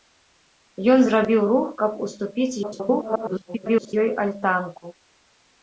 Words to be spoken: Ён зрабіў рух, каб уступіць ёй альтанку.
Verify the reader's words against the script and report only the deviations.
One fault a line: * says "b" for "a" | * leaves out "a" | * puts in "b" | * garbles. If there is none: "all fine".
* garbles